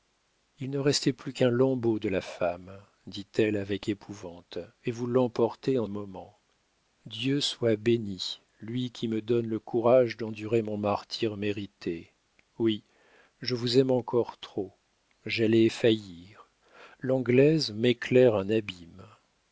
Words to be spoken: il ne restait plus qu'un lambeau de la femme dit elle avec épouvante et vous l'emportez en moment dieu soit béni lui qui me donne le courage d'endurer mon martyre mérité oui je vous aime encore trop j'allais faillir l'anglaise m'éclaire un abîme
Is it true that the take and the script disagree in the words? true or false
false